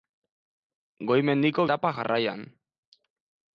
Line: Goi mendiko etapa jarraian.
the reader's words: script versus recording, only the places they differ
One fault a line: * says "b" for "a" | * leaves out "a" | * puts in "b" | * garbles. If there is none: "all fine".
all fine